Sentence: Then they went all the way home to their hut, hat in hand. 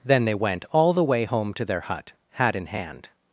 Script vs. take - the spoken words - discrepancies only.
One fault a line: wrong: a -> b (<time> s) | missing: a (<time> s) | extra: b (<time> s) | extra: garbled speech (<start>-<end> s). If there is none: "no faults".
no faults